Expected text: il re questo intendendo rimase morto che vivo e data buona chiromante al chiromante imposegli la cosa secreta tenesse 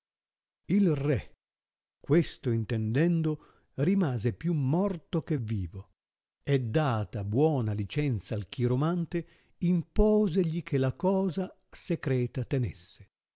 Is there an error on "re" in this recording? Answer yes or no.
no